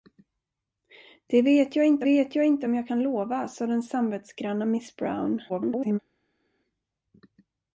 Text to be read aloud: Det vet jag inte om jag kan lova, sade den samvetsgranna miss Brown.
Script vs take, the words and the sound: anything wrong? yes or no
yes